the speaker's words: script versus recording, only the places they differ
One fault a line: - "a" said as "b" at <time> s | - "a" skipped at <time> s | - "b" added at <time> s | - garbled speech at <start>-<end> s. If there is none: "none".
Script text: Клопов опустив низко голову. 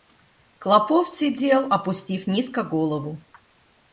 - "сидел" added at 1.1 s